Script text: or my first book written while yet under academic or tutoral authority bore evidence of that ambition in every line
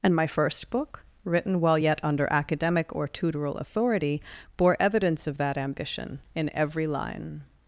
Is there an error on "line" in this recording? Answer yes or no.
no